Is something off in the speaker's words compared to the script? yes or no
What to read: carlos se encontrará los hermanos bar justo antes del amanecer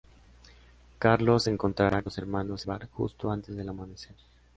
no